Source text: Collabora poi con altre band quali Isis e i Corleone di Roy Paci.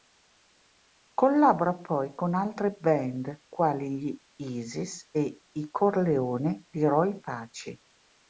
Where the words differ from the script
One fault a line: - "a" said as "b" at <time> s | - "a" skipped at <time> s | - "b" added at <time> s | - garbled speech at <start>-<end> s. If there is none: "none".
- "gli" added at 4.0 s